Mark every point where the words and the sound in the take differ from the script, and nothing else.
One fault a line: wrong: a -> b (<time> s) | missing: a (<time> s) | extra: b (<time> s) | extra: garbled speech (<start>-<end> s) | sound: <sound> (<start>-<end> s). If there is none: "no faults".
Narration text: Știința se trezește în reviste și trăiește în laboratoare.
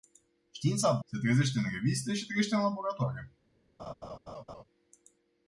sound: laugh (3.8-4.6 s)